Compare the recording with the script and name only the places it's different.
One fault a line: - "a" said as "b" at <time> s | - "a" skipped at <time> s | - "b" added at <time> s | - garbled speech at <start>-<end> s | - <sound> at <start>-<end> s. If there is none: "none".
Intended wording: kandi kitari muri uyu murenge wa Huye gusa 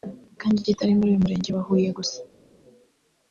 none